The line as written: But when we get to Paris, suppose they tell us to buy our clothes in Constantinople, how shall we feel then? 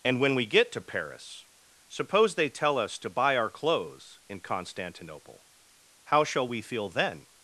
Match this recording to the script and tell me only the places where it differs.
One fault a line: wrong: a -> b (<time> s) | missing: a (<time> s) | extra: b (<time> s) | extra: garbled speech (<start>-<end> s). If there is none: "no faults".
wrong: But -> And (0.0 s)